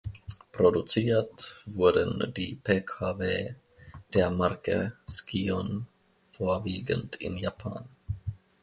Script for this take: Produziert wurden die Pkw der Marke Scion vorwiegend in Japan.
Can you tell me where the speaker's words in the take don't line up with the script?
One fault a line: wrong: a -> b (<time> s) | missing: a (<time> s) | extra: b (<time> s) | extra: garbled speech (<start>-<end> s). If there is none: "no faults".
no faults